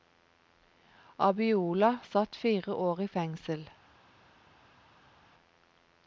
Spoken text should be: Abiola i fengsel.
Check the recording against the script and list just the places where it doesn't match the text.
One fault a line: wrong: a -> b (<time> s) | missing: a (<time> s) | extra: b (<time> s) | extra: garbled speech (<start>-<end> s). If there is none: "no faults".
extra: satt fire år (2.0 s)